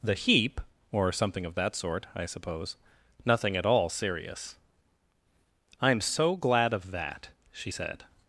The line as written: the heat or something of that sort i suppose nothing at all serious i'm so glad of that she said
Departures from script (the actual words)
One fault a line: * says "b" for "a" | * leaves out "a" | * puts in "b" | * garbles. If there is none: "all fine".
* says "heap" for "heat"